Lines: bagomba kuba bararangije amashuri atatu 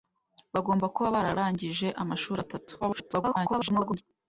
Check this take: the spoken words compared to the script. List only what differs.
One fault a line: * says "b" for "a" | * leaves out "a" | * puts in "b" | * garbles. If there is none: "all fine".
* garbles